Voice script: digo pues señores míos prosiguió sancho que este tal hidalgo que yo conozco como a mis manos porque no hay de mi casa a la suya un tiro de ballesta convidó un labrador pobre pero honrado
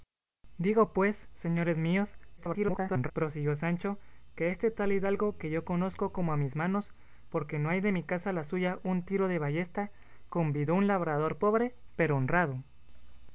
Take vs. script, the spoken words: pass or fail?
fail